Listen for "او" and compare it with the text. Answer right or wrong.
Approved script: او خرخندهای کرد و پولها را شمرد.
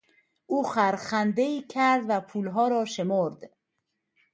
right